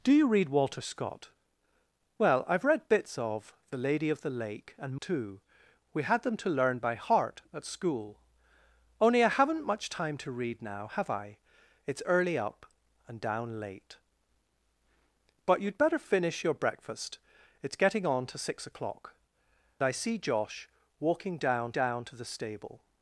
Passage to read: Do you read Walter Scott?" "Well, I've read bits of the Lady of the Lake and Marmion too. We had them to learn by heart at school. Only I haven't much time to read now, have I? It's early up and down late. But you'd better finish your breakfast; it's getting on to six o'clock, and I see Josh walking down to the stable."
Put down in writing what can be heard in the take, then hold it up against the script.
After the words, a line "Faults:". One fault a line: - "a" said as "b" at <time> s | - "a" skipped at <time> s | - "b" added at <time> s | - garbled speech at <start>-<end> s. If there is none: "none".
Do you read Walter Scott?" "Well, I've read bits of the Lady of the Lake and Too. We had them to learn by heart at school. Only I haven't much time to read now, have I? It's early up and down late. But you'd better finish your breakfast; it's getting on to six o'clock, I see Josh walking down down to the stable."
Faults:
- "Marmion" skipped at 5.0 s
- "and" skipped at 19.2 s
- "down" added at 21.7 s